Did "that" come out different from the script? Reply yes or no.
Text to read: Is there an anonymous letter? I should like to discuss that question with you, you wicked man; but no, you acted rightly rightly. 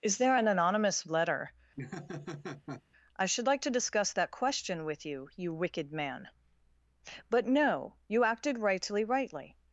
no